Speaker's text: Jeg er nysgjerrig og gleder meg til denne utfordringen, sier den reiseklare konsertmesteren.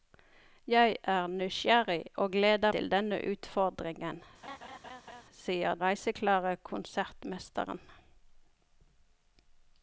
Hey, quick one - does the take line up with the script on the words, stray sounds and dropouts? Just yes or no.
no